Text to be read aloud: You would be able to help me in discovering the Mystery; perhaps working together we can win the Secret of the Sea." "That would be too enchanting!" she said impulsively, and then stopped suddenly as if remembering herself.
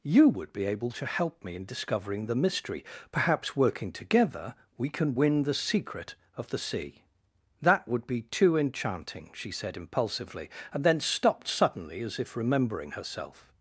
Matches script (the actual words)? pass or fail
pass